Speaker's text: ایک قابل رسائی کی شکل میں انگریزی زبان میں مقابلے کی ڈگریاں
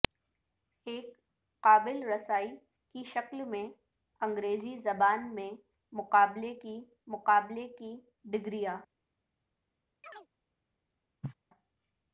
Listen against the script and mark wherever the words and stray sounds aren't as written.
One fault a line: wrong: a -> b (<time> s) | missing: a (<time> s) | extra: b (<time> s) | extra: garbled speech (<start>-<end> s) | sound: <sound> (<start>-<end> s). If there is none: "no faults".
extra: مقابلے کی (7.1 s)
sound: chirp (10.0-10.3 s)
sound: cough (11.2-11.3 s)